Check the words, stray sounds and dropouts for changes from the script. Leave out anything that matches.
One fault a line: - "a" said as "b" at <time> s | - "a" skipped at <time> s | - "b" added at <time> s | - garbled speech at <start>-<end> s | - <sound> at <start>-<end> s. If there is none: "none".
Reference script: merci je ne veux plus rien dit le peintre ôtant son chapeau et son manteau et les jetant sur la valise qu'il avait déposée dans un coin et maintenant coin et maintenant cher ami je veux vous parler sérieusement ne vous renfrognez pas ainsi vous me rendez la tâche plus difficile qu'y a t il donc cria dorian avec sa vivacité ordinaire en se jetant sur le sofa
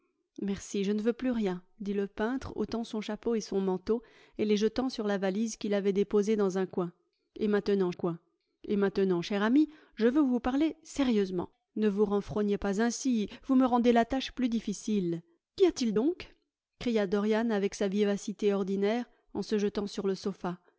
none